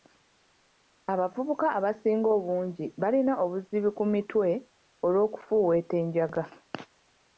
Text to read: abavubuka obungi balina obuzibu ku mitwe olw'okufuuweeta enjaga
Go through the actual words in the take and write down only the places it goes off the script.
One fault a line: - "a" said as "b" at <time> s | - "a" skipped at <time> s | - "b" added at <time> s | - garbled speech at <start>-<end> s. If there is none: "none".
- "abasinga" added at 1.8 s